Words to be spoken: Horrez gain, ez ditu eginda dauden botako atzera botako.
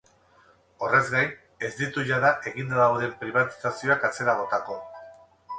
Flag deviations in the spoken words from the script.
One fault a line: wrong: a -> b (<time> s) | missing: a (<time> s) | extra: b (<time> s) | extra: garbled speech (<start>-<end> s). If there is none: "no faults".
extra: jada (2.1 s)
wrong: botako -> pribatizazioak (3.2 s)